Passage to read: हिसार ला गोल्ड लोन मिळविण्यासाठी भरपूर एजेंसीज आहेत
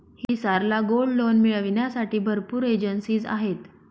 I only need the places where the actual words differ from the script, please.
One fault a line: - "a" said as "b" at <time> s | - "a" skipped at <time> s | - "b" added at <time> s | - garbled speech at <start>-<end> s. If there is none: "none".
none